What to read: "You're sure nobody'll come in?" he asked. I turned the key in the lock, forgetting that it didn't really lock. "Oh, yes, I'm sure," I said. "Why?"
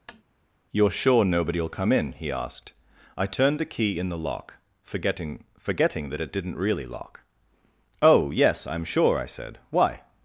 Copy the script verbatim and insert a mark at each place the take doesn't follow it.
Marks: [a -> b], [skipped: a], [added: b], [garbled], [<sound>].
[tap] "You're sure nobody'll come in?" he asked. I turned the key in the lock, forgetting [added: forgetting] that it didn't really lock. "Oh, yes, I'm sure," I said. "Why?"